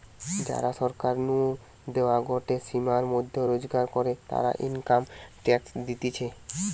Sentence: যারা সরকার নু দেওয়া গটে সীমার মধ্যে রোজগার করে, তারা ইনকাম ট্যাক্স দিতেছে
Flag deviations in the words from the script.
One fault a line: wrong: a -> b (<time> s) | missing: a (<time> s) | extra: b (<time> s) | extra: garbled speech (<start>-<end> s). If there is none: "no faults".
no faults